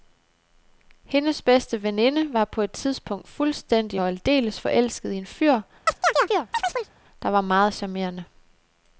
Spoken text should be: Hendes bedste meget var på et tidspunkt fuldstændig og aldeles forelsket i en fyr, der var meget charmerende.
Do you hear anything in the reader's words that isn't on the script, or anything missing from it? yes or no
yes